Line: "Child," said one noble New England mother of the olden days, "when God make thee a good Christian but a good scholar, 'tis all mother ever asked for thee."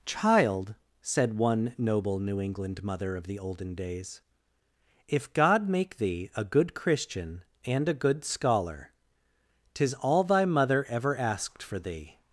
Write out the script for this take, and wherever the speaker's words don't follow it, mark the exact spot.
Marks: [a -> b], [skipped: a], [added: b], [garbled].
"Child," said one noble New England mother of the olden days, ["when -> if] God make thee a good Christian [but -> and] a good scholar, 'tis all [added: thy] mother ever asked for thee."